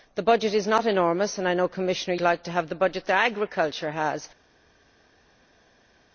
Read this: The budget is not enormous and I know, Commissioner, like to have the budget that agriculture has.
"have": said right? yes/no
yes